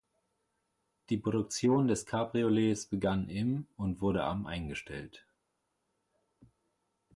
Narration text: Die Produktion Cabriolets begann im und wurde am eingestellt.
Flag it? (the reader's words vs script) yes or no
yes